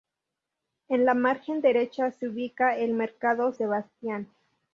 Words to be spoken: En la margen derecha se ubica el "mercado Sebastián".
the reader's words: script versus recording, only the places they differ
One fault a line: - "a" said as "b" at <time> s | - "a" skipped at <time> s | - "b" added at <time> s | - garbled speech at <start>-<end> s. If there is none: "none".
none